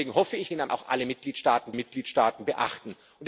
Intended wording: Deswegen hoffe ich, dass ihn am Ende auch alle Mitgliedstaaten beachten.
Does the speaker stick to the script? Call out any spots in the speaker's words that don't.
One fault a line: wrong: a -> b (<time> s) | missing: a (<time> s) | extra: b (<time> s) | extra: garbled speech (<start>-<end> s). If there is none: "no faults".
missing: dass (0.5 s)
missing: Ende (0.7 s)
extra: Mitgliedstaaten (1.7 s)